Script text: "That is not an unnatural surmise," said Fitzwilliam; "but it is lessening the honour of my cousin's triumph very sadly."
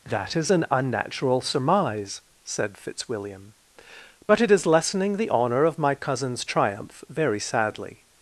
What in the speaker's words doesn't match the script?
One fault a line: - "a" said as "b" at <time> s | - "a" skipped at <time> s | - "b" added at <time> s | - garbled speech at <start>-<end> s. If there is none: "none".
- "not" skipped at 0.5 s